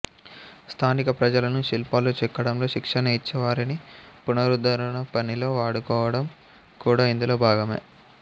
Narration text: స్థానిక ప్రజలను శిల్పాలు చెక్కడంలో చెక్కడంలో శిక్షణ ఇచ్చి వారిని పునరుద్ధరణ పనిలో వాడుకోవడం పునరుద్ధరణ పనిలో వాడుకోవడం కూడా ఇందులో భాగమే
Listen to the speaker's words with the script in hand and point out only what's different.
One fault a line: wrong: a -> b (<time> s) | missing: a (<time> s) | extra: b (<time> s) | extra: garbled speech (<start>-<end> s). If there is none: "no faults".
missing: చెక్కడంలో (2.7 s)
missing: పునరుద్ధరణ పనిలో వాడుకోవడం (6.3 s)